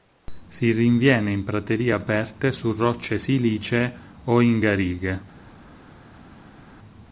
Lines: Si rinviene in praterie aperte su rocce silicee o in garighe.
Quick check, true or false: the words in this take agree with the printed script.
true